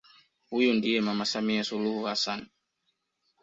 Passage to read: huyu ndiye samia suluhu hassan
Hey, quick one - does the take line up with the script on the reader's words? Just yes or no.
no